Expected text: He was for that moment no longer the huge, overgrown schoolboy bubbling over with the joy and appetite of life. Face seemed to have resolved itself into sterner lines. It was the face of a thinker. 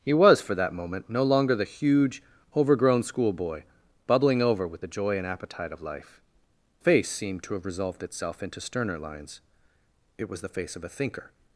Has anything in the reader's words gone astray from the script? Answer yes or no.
no